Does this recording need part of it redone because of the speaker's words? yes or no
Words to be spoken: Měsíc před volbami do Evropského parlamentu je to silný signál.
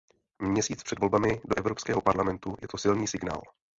no